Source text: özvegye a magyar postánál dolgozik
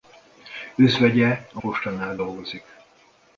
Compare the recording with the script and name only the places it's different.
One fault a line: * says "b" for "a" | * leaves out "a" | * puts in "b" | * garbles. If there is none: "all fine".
* leaves out "magyar"